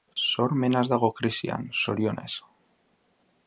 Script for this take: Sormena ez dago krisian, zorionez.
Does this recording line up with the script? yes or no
yes